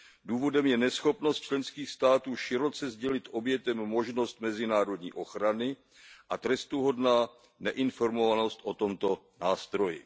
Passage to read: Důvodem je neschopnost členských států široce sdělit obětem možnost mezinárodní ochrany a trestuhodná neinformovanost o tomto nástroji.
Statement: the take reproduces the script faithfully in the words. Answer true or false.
true